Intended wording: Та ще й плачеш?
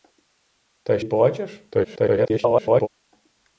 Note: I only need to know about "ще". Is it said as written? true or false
false